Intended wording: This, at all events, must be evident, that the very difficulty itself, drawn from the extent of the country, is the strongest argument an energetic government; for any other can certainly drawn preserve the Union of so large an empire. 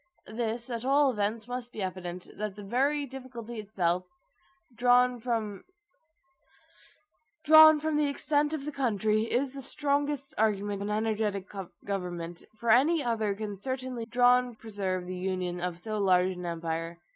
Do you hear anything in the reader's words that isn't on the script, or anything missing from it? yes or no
no